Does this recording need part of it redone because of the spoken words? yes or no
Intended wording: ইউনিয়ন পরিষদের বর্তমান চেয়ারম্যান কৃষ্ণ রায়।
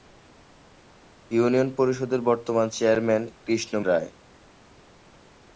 no